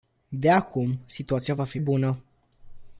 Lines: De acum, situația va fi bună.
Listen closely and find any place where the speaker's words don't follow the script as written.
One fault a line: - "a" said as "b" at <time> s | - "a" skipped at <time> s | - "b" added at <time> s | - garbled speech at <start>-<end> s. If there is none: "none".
none